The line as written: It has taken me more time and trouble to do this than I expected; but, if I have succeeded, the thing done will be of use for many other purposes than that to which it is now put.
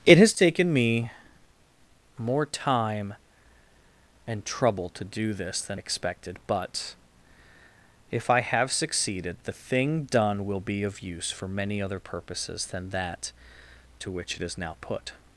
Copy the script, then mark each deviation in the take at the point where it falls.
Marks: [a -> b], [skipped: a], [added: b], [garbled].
It has taken me more time and trouble to do this than [skipped: I] expected; but, if I have succeeded, the thing done will be of use for many other purposes than that to which it is now put.